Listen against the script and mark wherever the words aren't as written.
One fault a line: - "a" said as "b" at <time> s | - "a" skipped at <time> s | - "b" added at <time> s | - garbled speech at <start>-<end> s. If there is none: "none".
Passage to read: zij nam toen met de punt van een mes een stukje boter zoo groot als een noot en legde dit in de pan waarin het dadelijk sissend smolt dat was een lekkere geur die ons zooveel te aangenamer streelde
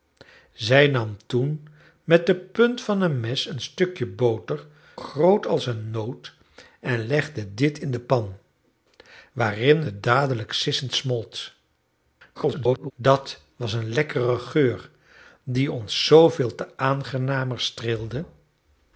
- "zoo" skipped at 4.7 s
- garbled speech at 12.3-12.9 s